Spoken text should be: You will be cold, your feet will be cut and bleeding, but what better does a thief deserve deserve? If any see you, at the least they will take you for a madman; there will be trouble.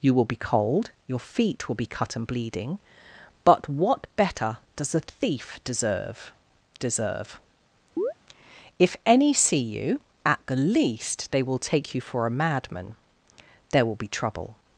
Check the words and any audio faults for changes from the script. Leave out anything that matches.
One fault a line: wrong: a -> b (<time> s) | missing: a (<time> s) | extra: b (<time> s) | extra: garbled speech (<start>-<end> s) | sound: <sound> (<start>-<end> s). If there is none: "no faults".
sound: chirp (8.0-8.1 s)